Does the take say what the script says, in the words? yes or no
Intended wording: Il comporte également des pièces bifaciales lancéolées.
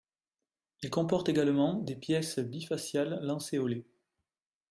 yes